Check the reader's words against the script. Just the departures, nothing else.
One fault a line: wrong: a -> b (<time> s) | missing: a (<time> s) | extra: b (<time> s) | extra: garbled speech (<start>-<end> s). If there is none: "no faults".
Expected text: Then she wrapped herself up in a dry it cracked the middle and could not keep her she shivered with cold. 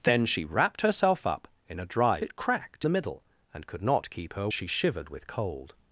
no faults